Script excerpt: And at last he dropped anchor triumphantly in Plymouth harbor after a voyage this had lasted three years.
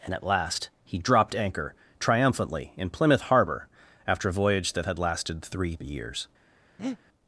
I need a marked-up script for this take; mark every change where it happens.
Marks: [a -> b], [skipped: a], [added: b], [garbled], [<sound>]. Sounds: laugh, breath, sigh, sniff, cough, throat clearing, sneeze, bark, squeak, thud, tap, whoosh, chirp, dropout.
And at last he dropped anchor triumphantly in Plymouth harbor after a voyage [this -> that] had lasted three years. [breath]